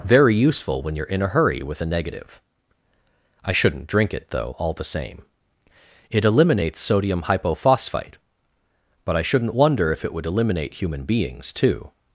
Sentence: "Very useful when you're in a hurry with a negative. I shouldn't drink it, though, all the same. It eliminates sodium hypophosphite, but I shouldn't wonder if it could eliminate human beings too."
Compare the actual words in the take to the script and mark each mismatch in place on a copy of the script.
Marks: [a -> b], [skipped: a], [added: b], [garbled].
"Very useful when you're in a hurry with a negative. I shouldn't drink it, though, all the same. It eliminates sodium hypophosphite, but I shouldn't wonder if it [could -> would] eliminate human beings too."